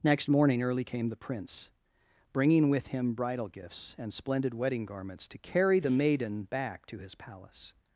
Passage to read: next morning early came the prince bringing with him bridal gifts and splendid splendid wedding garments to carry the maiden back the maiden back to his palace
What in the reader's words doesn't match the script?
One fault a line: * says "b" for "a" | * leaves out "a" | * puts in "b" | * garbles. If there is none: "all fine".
* leaves out "splendid"
* leaves out "the maiden back"